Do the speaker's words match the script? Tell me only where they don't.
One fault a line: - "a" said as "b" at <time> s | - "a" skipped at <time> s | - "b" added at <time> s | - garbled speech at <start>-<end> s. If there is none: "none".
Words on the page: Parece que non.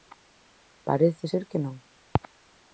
- "ser" added at 1.3 s